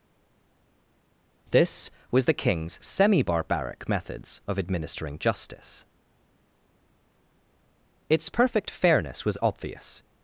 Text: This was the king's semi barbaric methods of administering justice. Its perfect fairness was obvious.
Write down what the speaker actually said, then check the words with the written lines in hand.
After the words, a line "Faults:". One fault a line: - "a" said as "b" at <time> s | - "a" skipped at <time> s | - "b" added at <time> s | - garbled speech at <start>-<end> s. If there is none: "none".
This was the king's semi barbaric methods of administering justice. Its perfect fairness was obvious.
Faults:
none